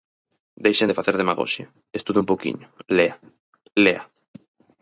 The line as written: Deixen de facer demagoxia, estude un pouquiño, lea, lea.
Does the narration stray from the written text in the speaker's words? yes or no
no